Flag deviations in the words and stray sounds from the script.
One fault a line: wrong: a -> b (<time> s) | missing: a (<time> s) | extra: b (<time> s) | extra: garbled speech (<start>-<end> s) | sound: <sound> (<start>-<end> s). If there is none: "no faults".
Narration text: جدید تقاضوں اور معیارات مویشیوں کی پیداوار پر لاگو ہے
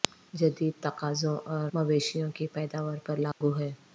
missing: معیارات (1.7 s)
sound: dropout (3.3-3.4 s)